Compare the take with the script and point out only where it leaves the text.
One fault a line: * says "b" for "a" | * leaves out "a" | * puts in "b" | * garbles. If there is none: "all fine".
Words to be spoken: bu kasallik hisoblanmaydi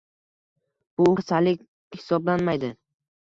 all fine